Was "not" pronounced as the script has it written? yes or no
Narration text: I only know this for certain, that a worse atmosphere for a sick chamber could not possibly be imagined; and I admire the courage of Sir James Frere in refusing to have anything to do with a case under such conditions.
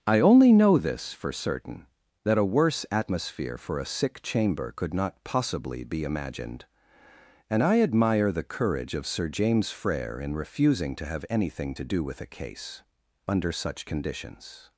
yes